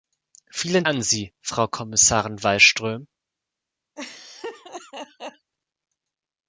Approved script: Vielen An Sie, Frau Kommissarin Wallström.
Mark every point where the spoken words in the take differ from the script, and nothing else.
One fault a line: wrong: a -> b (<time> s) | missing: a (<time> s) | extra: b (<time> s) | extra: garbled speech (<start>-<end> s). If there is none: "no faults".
no faults